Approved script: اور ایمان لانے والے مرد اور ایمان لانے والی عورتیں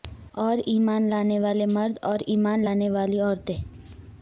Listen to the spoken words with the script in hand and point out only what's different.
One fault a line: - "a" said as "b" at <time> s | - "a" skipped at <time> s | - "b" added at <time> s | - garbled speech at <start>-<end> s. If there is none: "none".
none